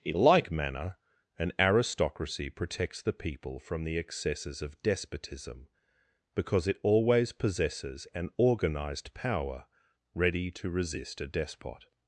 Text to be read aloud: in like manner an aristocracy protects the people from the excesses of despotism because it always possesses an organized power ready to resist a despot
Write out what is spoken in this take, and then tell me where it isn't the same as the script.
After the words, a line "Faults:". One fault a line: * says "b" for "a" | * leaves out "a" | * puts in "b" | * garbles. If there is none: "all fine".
in like manner an aristocracy protects the people from the excesses of despotism because it always possesses an organized power ready to resist a despot
Faults:
all fine